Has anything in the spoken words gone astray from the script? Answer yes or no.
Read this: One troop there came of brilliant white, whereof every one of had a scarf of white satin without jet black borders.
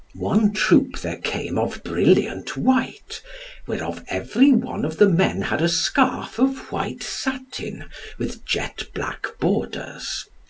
yes